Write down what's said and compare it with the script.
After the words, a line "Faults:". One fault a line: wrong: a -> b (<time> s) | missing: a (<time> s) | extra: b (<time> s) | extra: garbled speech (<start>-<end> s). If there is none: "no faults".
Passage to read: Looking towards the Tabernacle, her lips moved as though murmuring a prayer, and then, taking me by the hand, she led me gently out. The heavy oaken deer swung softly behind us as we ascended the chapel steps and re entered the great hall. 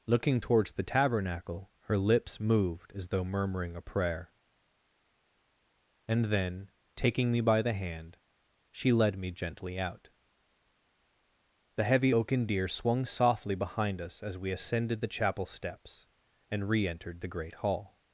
Looking towards the Tabernacle, her lips moved as though murmuring a prayer, and then, taking me by the hand, she led me gently out. The heavy oaken deer swung softly behind us as we ascended the chapel steps and re entered the great hall.
Faults:
no faults